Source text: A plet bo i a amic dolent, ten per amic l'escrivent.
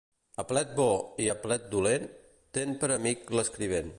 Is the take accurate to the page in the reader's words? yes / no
no